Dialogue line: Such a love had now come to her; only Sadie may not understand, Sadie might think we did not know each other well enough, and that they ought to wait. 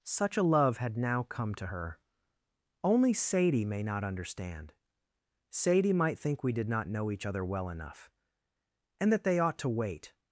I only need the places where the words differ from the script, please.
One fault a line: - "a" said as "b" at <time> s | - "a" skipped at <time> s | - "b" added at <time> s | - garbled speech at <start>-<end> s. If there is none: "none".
none